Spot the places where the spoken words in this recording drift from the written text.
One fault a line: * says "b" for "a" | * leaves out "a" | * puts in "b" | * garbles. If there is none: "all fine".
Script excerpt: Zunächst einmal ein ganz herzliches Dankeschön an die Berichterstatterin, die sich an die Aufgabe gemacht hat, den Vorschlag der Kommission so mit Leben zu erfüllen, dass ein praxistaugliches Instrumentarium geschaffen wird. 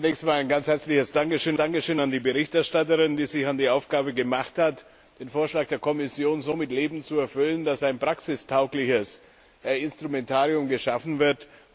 * puts in "Dankeschön"